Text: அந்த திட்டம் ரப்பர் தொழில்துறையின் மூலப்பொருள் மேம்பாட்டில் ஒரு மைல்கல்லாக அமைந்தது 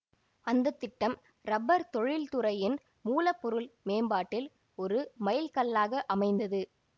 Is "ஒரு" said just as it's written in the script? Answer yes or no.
yes